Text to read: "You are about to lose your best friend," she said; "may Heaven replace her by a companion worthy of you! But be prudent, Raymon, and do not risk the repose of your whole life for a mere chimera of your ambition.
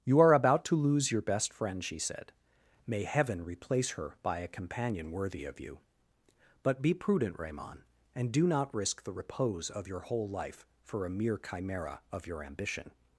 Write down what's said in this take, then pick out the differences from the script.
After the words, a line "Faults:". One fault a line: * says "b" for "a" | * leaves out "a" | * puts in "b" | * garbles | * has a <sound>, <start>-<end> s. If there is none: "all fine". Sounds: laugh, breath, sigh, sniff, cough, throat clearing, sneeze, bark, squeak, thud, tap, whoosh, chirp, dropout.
"You are about to lose your best friend," she said; "may Heaven replace her by a companion worthy of you! But be prudent, Raymon, and do not risk the repose of your whole life for a mere chimera of your ambition.
Faults:
all fine